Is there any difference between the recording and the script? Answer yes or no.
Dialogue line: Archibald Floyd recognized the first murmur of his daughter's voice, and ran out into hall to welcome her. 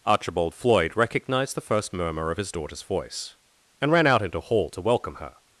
no